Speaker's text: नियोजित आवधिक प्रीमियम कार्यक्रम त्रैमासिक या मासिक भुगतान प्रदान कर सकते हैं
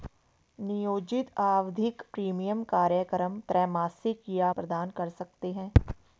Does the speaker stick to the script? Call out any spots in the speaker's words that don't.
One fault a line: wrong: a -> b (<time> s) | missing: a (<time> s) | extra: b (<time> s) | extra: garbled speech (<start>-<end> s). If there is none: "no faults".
missing: मासिक भुगतान (4.5 s)